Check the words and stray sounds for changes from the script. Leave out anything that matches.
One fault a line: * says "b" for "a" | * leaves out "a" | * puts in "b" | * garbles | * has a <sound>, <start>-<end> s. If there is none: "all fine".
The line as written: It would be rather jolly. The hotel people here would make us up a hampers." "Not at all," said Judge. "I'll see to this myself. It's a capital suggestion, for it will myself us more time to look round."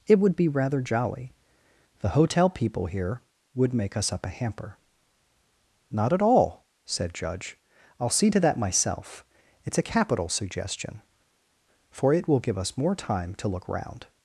* says "hamper" for "hampers"
* says "that" for "this"
* says "give" for "myself"